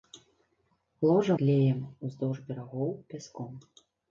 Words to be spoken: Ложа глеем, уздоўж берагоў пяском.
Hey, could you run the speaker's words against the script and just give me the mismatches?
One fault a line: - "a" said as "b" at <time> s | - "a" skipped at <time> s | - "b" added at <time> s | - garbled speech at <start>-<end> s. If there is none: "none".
none